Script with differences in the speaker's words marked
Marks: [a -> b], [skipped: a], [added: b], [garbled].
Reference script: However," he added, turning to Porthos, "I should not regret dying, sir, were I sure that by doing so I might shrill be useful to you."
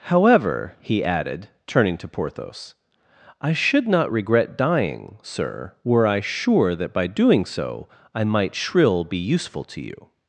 However," he added, turning to Porthos, "I should not regret dying, sir, were I sure that by doing so I might shrill be useful to you."